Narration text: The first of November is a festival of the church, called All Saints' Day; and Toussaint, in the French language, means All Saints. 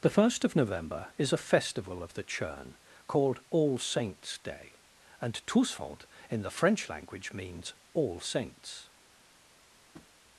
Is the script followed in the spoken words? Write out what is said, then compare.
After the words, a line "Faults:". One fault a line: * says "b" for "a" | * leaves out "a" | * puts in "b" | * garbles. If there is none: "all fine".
The first of November is a festival of the churn, called All Saints' Day; and Toussaint, in the French language, means All Saints.
Faults:
* says "churn" for "church"